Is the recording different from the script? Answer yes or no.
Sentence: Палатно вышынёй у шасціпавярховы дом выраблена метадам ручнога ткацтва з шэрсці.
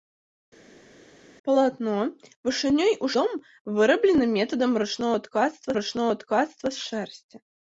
yes